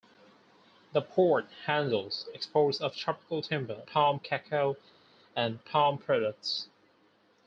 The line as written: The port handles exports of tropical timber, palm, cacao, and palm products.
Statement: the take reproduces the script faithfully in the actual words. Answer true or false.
true